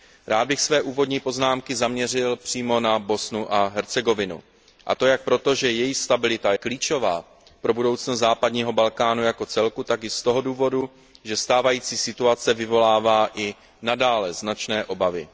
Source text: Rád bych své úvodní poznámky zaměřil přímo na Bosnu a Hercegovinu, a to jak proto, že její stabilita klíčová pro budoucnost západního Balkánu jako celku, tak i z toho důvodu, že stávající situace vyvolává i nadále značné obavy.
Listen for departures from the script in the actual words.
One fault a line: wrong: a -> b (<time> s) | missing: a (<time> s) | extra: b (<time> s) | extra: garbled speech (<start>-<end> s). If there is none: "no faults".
no faults